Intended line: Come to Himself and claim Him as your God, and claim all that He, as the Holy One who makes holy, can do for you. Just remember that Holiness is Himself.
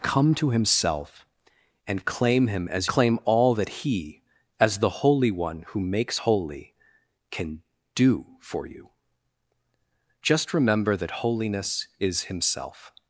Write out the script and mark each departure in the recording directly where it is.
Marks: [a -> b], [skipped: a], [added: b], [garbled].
Come to Himself and claim Him as [skipped: your God, and] claim all that He, as the Holy One who makes holy, can do for you. Just remember that Holiness is Himself.